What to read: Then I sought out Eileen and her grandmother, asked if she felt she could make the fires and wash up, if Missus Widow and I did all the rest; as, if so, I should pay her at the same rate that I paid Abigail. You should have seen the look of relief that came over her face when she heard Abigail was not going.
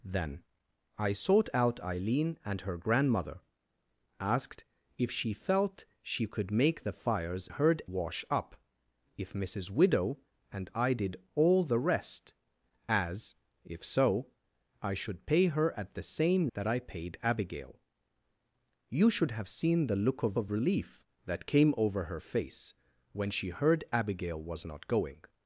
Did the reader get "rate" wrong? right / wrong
wrong